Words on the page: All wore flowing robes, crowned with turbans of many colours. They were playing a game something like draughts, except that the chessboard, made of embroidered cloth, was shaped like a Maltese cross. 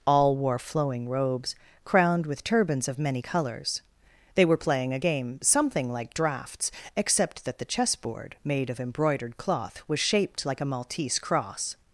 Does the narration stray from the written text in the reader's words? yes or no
no